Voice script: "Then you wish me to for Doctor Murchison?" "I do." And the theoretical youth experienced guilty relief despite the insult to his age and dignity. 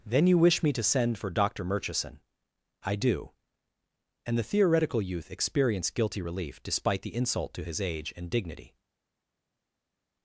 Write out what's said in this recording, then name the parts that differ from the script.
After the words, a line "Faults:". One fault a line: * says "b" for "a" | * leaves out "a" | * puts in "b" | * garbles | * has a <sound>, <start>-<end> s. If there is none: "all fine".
"Then you wish me to send for Doctor Murchison?" "I do." And the theoretical youth experienced guilty relief despite the insult to his age and dignity.
Faults:
* puts in "send"